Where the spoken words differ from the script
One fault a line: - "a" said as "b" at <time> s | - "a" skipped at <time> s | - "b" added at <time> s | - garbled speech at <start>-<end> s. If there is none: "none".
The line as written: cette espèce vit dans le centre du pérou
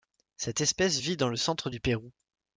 none